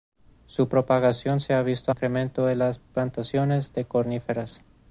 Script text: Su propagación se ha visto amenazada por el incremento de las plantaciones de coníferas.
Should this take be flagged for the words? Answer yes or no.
yes